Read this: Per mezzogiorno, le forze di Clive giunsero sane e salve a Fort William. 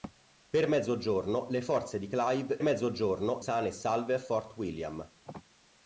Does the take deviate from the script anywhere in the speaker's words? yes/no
yes